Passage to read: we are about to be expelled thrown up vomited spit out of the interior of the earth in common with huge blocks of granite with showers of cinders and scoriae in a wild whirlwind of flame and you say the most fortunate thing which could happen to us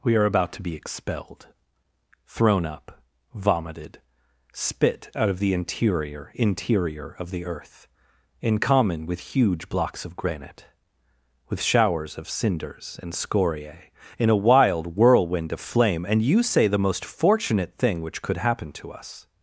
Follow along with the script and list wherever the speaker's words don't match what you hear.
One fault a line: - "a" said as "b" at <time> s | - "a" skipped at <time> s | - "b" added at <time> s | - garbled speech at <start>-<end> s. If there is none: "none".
- "interior" added at 6.3 s